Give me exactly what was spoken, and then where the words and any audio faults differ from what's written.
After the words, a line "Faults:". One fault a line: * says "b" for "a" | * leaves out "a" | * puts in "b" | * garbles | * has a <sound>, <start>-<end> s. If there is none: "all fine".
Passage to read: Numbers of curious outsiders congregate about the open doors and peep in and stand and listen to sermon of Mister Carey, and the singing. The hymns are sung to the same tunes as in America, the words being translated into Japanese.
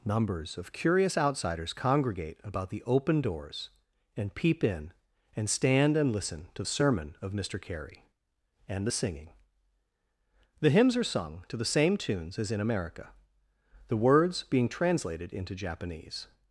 Numbers of curious outsiders congregate about the open doors and peep in and stand and listen to sermon of Mister Carey, and the singing. The hymns are sung to the same tunes as in America, the words being translated into Japanese.
Faults:
all fine